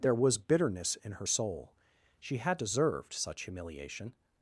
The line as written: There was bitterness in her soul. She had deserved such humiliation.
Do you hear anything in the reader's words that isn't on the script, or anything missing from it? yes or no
no